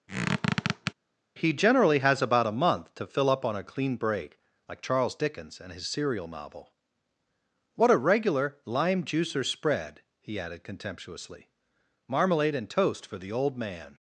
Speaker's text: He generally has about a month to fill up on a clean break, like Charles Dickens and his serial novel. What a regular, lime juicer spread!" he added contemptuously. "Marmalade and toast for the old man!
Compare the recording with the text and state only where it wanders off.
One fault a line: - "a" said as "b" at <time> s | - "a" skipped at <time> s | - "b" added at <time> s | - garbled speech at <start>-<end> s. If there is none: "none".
none